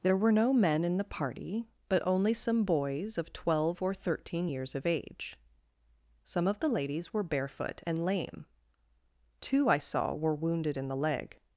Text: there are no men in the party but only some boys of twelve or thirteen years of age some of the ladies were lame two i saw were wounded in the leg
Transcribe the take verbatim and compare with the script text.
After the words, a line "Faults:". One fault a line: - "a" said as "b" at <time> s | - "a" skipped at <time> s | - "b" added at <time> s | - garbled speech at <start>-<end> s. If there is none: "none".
there were no men in the party but only some boys of twelve or thirteen years of age some of the ladies were barefoot and lame two i saw were wounded in the leg
Faults:
- "are" said as "were" at 0.2 s
- "barefoot and" added at 7.2 s